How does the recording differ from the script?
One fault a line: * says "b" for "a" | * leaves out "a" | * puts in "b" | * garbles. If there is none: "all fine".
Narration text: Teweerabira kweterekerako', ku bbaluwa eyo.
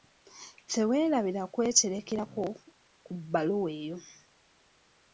all fine